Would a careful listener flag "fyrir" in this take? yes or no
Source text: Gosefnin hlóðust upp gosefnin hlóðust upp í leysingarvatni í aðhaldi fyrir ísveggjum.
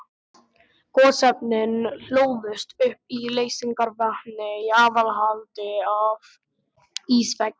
yes